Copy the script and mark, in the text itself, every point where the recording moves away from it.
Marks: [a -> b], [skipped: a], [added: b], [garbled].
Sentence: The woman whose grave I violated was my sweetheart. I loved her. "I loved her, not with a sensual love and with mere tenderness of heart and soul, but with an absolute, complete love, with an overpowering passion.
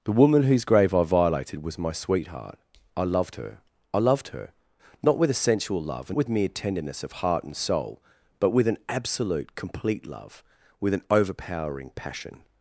The woman whose grave I violated was my sweetheart. I loved her. "I loved her, not with a sensual love and with mere tenderness of heart and soul, but with an absolute, complete love, with an overpowering passion.